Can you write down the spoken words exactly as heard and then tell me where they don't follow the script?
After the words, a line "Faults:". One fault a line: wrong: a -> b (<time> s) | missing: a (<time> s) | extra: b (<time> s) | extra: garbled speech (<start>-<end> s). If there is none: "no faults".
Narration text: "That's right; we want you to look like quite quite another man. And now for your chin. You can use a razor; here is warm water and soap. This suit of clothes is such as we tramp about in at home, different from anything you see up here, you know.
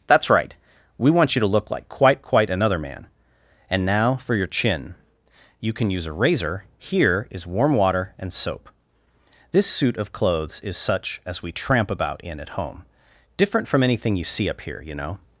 "That's right; we want you to look like quite quite another man. And now for your chin. You can use a razor; here is warm water and soap. This suit of clothes is such as we tramp about in at home, different from anything you see up here, you know.
Faults:
no faults